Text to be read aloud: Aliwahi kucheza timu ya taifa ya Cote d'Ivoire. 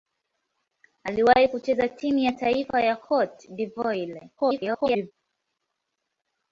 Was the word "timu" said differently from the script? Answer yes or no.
no